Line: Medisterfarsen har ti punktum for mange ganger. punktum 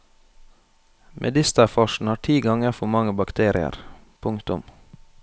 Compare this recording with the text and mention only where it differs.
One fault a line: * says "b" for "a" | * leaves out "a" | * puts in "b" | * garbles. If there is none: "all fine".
* says "ganger" for "punktum"
* says "bakterier" for "ganger"